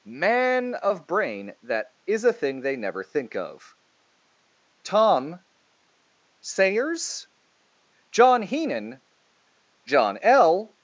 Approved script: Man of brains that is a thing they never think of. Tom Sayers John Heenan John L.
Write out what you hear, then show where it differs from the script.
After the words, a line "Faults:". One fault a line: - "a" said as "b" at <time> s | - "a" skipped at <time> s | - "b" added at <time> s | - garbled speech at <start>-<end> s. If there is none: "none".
Man of brain that is a thing they never think of. Tom Sayers John Heenan John L.
Faults:
- "brains" said as "brain" at 1.1 s